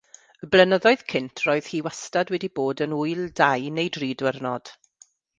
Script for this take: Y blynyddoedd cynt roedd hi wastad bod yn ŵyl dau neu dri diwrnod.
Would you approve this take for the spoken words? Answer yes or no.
no